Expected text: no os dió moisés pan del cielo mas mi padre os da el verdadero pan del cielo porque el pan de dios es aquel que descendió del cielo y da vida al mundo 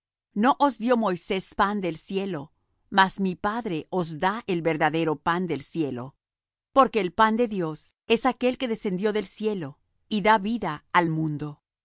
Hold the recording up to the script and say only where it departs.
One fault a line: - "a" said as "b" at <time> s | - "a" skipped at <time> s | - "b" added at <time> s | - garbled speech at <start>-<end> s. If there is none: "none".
none